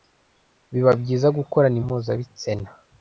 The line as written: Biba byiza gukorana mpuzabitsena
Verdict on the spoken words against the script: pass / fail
pass